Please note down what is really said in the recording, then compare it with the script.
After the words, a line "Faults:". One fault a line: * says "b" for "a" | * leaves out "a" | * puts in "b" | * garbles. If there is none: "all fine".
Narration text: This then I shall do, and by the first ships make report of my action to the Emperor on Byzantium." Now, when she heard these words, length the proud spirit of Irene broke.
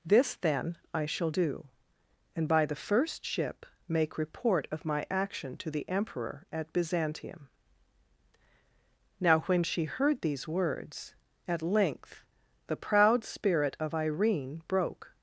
This then I shall do, and by the first ship make report of my action to the Emperor at Byzantium." Now, when she heard these words, at length the proud spirit of Irene broke.
Faults:
* says "ship" for "ships"
* says "at" for "on"
* puts in "at"